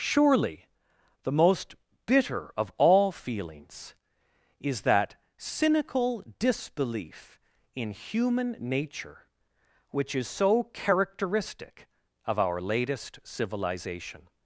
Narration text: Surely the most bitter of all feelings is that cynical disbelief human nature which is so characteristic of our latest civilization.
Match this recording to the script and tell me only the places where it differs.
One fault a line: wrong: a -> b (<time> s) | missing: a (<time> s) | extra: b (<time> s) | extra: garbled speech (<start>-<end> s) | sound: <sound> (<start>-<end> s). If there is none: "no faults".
extra: in (7.8 s)